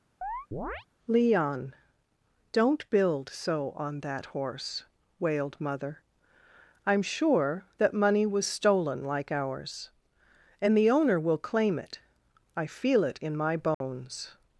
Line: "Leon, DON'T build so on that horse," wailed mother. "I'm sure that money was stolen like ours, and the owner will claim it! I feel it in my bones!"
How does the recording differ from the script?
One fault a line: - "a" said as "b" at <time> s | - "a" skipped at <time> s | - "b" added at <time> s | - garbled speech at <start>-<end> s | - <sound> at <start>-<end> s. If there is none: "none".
- chirp at 0.2-0.9 s
- dropout at 13.7-13.8 s